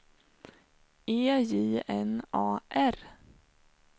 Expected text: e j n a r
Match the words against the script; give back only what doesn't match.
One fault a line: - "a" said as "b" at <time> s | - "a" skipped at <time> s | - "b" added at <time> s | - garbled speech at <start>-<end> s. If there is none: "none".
none